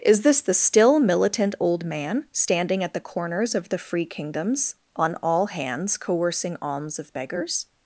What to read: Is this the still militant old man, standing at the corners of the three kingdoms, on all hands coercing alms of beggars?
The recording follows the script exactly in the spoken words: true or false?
false